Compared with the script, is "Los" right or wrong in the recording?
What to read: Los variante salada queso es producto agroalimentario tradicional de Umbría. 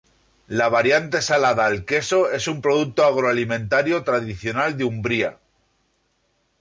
wrong